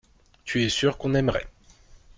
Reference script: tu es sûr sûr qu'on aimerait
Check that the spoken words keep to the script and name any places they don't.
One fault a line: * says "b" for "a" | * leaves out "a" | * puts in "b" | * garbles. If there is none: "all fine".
* leaves out "sûr"